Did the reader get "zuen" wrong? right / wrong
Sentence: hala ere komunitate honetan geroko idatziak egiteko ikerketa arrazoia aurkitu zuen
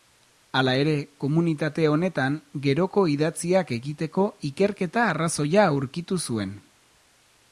right